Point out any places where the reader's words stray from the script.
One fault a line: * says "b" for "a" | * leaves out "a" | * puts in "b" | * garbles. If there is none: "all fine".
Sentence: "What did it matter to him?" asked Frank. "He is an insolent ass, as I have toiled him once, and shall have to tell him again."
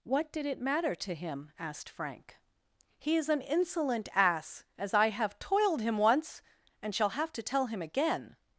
all fine